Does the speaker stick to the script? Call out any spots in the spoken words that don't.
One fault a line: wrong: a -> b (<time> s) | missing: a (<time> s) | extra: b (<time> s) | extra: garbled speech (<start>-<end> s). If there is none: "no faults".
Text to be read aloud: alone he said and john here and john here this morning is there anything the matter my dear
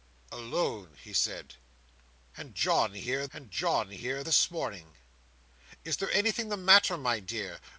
no faults